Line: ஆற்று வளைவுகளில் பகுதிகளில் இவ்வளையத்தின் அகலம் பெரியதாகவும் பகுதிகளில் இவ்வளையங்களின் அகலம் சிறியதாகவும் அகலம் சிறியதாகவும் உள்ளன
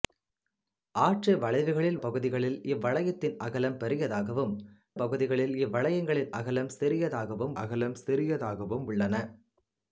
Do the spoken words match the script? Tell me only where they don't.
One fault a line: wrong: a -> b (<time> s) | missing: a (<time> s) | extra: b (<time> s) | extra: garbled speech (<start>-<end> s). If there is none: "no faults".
no faults